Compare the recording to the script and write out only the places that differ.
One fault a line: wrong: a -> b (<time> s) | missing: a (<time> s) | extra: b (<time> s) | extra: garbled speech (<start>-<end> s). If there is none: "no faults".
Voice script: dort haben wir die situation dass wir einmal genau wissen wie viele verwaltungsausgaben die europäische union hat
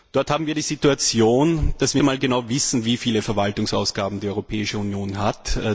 no faults